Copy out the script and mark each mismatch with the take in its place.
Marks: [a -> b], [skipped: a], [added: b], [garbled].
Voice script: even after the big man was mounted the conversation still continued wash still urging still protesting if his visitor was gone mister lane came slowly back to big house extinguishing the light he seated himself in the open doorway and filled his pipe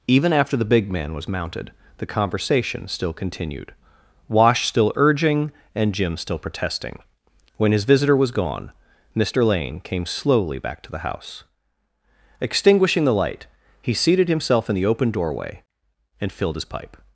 even after the big man was mounted the conversation still continued wash still urging [added: and jim] still protesting [if -> when] his visitor was gone mister lane came slowly back to [big -> the] house extinguishing the light he seated himself in the open doorway and filled his pipe